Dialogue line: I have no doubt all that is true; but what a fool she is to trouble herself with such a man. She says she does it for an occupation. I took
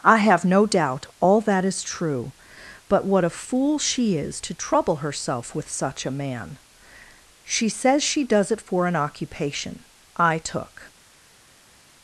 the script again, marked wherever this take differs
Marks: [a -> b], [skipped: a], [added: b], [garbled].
I have no doubt all that is true; but what a fool she is to trouble herself with such a man. She says she does it for an occupation. I took